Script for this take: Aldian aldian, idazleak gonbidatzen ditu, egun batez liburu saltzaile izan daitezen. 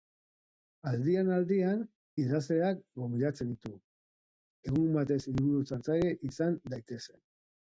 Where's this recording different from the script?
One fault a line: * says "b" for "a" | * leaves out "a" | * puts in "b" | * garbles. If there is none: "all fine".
all fine